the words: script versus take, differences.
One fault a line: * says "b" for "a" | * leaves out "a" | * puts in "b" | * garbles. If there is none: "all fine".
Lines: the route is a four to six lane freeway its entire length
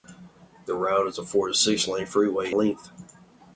* leaves out "its entire"